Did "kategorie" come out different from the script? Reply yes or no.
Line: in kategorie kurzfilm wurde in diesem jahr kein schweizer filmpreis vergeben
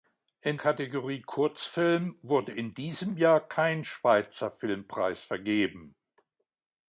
no